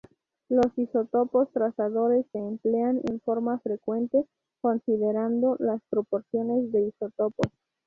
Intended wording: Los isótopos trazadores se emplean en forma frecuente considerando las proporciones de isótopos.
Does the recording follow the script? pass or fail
pass